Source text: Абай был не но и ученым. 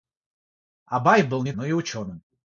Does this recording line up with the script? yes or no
yes